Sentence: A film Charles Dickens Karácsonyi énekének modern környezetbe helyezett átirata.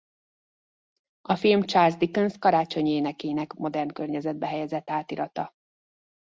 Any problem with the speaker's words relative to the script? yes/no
no